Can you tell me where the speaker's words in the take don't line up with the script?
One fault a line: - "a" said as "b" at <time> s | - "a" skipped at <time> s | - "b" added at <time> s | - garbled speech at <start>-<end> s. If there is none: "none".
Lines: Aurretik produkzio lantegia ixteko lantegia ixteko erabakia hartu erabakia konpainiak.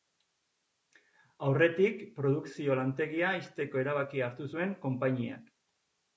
- "lantegia ixteko" skipped at 3.8 s
- "erabakia" said as "zuen" at 4.5 s